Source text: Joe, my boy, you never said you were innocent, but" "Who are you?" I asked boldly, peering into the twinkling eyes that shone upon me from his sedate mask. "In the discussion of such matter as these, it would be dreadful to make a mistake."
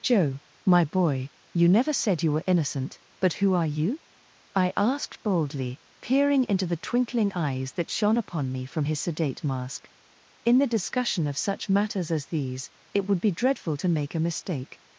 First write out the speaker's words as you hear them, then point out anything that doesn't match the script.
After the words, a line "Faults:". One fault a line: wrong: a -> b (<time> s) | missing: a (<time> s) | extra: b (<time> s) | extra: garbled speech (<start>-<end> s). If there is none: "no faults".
Joe, my boy, you never said you were innocent, but" "Who are you?" I asked boldly, peering into the twinkling eyes that shone upon me from his sedate mask. "In the discussion of such matters as these, it would be dreadful to make a mistake."
Faults:
wrong: matter -> matters (11.7 s)